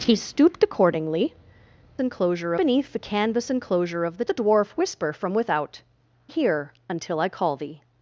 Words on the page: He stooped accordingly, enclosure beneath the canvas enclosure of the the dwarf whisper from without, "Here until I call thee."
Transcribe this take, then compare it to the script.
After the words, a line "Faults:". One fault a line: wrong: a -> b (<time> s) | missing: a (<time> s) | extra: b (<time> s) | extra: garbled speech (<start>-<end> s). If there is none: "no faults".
He stooped accordingly, enclosure beneath the canvas enclosure of the the dwarf whisper from without, "Here until I call thee."
Faults:
no faults